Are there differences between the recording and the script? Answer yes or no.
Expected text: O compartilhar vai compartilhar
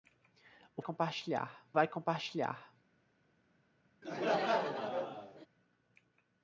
no